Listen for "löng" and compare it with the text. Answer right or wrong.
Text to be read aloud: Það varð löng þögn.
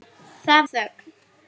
wrong